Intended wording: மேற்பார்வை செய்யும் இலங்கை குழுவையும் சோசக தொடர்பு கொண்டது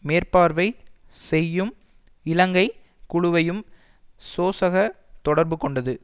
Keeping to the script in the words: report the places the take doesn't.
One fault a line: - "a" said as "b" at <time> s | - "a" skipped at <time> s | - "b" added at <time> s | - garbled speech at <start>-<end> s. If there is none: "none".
none